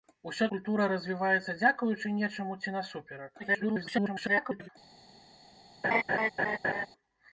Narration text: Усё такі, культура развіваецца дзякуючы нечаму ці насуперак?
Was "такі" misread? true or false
true